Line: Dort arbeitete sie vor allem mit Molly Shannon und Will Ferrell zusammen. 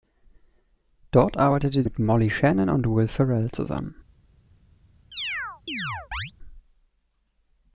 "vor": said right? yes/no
no